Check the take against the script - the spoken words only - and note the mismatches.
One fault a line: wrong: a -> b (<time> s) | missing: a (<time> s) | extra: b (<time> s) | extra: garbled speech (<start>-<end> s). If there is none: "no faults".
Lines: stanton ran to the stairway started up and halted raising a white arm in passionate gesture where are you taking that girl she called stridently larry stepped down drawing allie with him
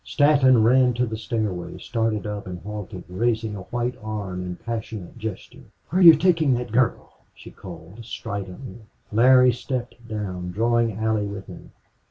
no faults